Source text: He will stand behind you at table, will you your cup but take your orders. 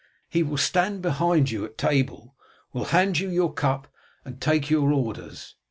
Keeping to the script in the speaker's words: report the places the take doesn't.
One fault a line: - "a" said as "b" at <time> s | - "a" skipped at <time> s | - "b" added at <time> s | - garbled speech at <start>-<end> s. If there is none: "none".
- "hand" added at 2.9 s
- "but" said as "and" at 4.2 s